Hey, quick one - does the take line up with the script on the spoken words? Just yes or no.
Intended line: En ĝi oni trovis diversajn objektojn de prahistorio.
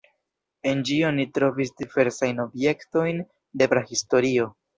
yes